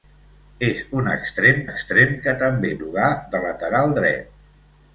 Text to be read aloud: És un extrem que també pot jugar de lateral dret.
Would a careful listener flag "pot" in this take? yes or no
yes